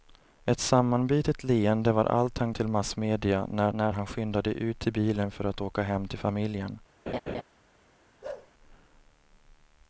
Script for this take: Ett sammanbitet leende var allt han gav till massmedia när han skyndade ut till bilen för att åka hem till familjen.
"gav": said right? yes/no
no